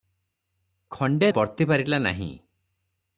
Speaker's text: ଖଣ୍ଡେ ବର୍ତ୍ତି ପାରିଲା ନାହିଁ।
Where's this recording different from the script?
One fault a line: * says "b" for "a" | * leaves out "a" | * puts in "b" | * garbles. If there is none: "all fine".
all fine